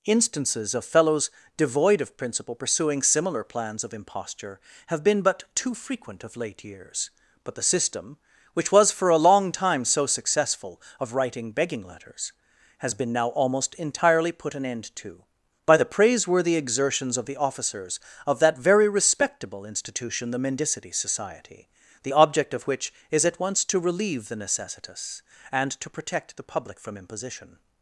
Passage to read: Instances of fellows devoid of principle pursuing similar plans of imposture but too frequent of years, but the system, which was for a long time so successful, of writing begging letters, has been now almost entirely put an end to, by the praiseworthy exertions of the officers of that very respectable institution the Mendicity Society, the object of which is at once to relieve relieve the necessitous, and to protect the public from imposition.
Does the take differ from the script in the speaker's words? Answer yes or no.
yes